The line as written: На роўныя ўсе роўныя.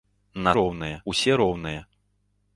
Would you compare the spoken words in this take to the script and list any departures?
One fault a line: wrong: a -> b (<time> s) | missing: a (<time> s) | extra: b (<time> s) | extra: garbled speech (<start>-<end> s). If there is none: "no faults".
no faults